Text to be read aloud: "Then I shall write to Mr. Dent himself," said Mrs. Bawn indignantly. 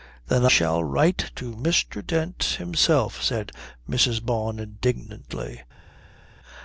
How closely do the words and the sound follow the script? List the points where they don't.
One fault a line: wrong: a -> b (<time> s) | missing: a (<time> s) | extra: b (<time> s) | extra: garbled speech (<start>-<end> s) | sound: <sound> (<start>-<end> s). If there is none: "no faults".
missing: I (0.5 s)